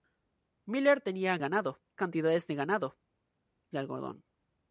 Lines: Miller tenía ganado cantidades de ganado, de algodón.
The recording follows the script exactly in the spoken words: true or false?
true